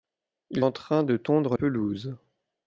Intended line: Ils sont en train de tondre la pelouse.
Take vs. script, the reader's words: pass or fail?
fail